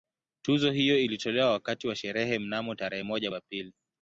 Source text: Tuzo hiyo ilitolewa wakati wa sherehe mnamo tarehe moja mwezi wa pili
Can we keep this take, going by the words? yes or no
no